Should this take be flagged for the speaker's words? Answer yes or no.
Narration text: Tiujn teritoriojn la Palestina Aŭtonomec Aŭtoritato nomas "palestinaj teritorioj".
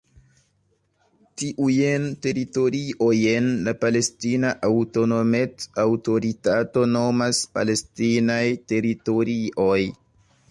no